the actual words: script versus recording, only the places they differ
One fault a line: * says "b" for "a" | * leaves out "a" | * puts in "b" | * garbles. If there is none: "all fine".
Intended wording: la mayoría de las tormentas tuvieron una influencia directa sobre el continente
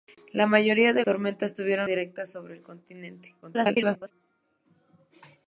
* leaves out "las"
* leaves out "una influencia"
* garbles